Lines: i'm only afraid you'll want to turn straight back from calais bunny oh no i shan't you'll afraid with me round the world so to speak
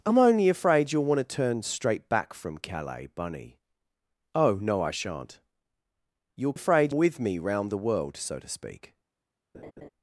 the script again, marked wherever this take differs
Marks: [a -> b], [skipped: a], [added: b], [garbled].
i'm only afraid you'll want to turn straight back from calais bunny oh no i shan't you'll afraid with me round the world so to speak